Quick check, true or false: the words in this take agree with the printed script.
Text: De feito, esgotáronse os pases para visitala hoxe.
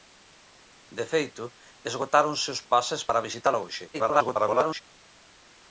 false